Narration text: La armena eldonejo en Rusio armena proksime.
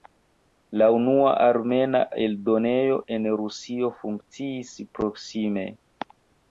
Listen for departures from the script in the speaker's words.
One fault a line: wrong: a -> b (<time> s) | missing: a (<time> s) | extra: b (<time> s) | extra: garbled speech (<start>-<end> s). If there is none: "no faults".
extra: unua (0.9 s)
wrong: armena -> funkciis (4.0 s)